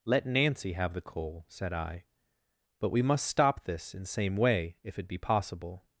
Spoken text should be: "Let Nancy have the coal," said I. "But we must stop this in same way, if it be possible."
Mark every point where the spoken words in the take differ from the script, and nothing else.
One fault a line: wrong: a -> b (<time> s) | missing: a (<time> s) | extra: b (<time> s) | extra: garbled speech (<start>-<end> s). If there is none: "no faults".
no faults